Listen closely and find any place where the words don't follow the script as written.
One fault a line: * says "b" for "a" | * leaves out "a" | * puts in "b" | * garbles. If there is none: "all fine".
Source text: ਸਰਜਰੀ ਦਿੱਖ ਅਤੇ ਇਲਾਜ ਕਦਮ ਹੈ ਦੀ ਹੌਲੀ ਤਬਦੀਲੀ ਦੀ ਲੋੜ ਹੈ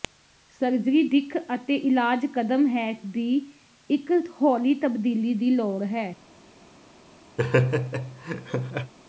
* puts in "ਇੱਕ"